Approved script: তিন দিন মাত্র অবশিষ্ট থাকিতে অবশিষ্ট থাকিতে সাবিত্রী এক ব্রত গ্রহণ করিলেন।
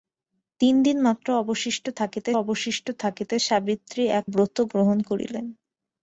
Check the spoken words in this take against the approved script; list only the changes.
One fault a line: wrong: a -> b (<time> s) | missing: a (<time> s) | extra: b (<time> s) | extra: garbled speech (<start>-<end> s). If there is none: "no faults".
no faults